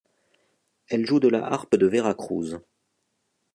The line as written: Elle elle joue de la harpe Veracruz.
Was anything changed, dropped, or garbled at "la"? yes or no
no